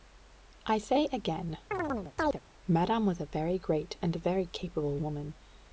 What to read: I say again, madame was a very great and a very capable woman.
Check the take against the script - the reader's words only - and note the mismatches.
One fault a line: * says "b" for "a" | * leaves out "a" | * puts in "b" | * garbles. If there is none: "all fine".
all fine